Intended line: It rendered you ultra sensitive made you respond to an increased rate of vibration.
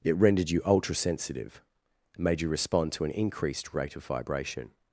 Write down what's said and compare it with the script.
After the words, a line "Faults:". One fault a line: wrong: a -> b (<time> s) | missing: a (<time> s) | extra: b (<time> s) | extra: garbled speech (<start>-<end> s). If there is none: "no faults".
It rendered you ultra sensitive made you respond to an increased rate of vibration.
Faults:
no faults